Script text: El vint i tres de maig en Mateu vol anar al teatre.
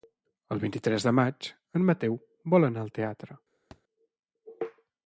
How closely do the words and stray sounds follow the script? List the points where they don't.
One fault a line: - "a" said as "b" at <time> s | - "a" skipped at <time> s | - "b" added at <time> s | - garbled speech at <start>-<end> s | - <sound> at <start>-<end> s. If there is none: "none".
- thud at 3.7-3.8 s